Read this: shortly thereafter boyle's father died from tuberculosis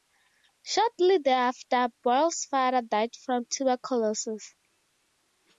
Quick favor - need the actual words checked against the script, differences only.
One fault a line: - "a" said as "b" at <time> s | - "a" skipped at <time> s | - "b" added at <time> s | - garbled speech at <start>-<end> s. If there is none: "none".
none